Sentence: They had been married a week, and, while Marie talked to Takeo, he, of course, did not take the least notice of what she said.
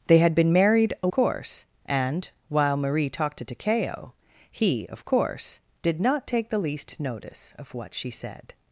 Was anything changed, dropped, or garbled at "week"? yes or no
yes